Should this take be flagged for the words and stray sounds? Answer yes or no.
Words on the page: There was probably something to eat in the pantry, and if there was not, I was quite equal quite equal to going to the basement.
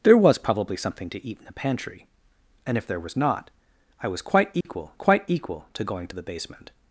yes